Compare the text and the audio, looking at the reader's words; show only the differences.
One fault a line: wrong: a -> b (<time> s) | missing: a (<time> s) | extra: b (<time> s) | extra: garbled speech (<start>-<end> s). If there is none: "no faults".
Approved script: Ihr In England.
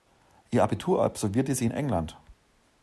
extra: Abitur absolvierte sie (0.6 s)